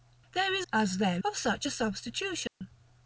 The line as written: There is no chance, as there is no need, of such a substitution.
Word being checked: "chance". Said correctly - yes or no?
no